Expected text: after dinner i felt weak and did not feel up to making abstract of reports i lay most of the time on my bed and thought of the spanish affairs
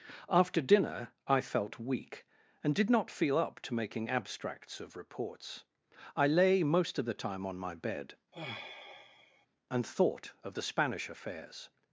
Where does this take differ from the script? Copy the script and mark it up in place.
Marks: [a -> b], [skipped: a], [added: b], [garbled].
after dinner i felt weak and did not feel up to making [abstract -> abstracts] of reports i lay most of the time on my bed and thought of the spanish affairs